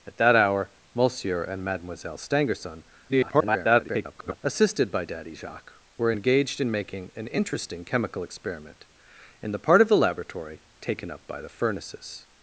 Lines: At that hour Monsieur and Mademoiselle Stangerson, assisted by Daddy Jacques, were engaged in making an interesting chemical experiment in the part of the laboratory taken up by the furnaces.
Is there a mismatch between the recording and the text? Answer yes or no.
yes